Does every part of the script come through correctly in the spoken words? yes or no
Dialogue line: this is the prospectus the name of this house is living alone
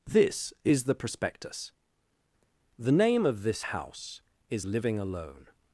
yes